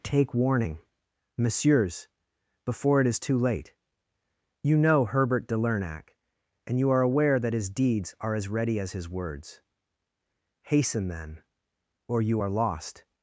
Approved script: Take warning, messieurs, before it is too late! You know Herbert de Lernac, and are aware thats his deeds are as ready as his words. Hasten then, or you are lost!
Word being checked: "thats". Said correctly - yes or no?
no